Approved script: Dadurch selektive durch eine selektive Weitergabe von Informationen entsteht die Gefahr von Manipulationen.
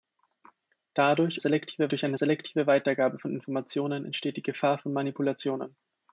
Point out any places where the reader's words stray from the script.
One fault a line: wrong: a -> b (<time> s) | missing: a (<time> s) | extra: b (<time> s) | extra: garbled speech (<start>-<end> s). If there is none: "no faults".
no faults